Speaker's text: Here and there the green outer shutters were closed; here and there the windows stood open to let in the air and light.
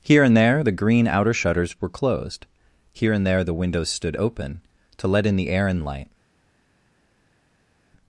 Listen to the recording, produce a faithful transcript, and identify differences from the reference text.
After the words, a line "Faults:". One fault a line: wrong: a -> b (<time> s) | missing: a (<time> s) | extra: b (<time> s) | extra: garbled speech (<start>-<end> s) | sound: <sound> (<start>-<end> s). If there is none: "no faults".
Here and there the green outer shutters were closed; here and there the windows stood open to let in the air and light.
Faults:
no faults